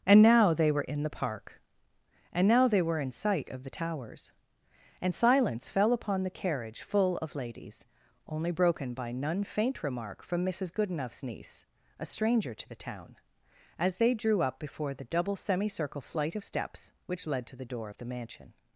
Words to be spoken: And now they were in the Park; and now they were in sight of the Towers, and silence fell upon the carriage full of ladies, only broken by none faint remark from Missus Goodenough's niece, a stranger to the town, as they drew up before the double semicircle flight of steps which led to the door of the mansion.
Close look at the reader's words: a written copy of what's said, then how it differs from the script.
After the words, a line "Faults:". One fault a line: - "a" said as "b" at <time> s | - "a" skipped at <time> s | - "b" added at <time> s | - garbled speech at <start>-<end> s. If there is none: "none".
And now they were in the Park; and now they were in sight of the Towers, and silence fell upon the carriage full of ladies, only broken by none faint remark from Missus Goodenough's niece, a stranger to the town, as they drew up before the double semicircle flight of steps which led to the door of the mansion.
Faults:
none